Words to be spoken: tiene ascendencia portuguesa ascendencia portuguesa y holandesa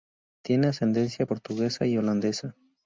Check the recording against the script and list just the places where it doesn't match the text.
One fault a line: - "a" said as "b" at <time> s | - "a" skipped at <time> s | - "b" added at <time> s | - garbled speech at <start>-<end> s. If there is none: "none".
- "ascendencia portuguesa" skipped at 1.9 s